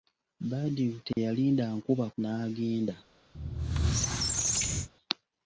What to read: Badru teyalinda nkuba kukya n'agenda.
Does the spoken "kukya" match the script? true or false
false